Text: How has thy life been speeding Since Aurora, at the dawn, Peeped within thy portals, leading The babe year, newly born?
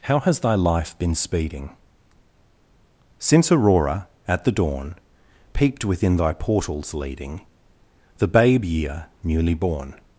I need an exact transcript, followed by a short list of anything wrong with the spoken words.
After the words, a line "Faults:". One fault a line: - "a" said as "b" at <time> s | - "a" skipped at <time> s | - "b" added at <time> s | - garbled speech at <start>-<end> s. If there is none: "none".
How has thy life been speeding Since Aurora, at the dawn, Peeped within thy portals, leading The babe year, newly born?
Faults:
none